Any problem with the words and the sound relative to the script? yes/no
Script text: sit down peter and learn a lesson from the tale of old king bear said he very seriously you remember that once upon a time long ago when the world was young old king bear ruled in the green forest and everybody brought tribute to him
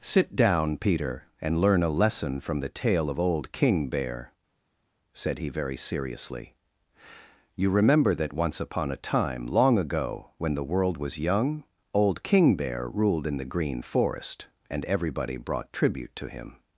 no